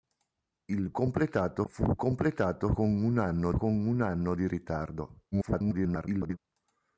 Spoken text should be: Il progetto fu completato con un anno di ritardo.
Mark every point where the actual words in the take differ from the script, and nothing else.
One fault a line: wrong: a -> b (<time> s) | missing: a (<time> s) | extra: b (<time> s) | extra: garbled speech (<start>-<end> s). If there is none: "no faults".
wrong: progetto -> completato (0.9 s)
extra: con un anno (3.5 s)
extra: garbled speech (5.3-6.4 s)